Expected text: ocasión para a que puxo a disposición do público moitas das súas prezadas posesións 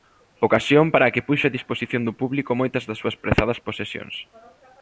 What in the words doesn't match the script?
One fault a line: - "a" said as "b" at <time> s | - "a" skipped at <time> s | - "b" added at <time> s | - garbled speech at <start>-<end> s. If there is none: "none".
none